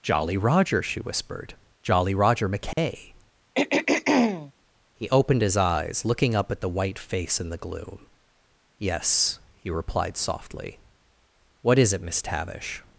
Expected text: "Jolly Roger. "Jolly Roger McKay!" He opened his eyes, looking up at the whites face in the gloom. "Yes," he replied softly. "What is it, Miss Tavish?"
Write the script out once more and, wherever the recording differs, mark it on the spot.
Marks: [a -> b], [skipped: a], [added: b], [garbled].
"Jolly Roger. [added: she whispered] "Jolly Roger McKay!" He opened his eyes, looking up at the [whites -> white] face in the gloom. "Yes," he replied softly. "What is it, Miss Tavish?"